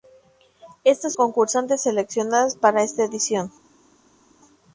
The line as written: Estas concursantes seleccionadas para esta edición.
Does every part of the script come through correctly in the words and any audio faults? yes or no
yes